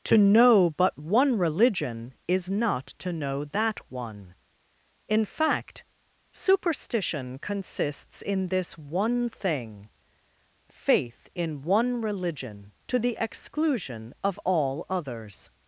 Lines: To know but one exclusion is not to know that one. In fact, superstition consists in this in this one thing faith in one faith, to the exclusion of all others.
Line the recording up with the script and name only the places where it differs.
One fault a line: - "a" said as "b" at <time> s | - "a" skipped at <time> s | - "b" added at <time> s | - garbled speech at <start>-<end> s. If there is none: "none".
- "exclusion" said as "religion" at 1.4 s
- "in this" skipped at 8.8 s
- "faith" said as "religion" at 12.0 s